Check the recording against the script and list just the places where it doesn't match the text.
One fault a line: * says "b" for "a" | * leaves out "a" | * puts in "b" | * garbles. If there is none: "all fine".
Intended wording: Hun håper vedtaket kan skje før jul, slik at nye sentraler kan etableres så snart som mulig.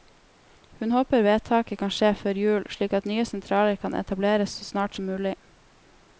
all fine